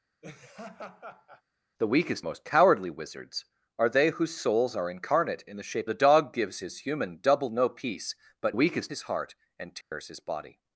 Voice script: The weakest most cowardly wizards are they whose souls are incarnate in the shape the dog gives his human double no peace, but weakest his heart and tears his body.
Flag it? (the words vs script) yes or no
no